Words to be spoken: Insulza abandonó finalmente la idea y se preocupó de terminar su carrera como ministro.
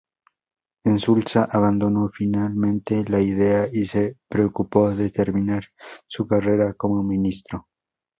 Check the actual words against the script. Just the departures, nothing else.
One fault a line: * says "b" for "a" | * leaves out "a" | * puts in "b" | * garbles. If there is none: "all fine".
all fine